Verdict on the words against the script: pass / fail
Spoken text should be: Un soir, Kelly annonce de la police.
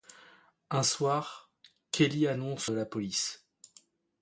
pass